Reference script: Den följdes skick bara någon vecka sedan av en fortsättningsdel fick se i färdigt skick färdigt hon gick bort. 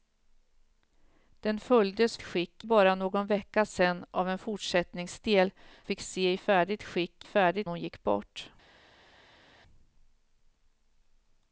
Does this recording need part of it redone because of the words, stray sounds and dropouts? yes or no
no